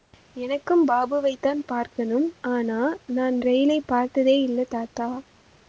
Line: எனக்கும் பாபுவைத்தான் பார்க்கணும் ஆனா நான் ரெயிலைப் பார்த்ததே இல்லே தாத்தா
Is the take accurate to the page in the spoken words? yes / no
yes